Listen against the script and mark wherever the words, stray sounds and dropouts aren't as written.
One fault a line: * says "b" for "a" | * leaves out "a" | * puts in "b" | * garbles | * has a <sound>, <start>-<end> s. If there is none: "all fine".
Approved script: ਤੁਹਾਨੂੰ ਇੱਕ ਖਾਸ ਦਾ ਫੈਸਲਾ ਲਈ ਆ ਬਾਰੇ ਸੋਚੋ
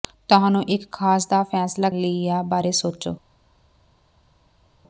all fine